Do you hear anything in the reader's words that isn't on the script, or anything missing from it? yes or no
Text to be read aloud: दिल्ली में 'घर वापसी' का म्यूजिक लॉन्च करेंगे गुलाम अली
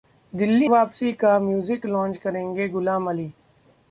yes